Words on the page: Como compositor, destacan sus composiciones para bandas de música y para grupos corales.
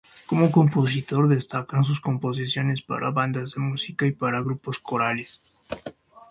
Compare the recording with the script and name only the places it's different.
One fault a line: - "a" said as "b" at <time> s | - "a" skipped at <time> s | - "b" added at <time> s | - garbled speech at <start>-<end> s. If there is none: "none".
none